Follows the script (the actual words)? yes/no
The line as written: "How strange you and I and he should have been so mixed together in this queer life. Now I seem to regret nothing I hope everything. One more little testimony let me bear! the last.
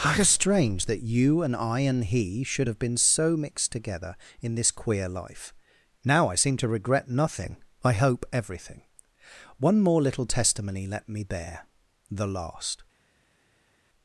no